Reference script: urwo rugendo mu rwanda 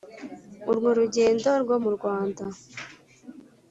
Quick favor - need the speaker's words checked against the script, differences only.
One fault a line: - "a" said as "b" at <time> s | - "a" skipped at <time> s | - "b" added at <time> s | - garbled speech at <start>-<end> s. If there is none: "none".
- "rwo" added at 1.6 s